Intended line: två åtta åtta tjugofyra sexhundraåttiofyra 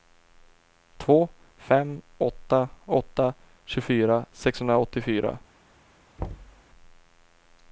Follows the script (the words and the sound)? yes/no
no